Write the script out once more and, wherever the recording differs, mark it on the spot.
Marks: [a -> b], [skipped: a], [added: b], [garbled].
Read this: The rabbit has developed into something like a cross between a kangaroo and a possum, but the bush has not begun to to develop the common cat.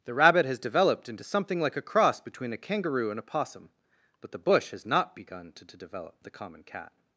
The rabbit has developed into something like a cross between a kangaroo and a possum, but the bush has not begun to to develop the common cat.